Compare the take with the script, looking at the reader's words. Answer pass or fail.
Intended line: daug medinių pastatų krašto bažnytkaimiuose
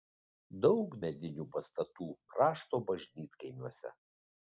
pass